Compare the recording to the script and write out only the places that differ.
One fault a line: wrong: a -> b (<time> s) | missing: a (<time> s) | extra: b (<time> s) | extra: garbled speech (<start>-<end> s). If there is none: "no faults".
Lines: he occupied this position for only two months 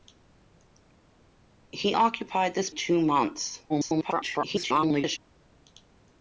missing: position for only (2.7 s)
extra: garbled speech (3.7-5.2 s)